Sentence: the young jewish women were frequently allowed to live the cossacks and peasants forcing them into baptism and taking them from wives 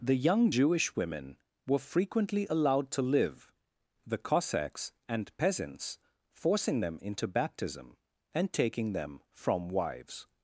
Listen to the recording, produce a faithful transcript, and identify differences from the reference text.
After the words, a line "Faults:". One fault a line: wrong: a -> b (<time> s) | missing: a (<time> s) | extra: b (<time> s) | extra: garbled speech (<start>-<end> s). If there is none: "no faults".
the young jewish women were frequently allowed to live the cossacks and peasants forcing them into baptism and taking them from wives
Faults:
no faults